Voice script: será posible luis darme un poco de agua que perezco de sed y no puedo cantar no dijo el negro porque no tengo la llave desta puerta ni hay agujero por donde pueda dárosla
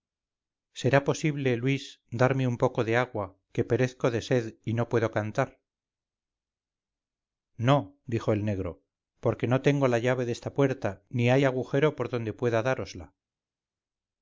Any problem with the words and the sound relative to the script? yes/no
no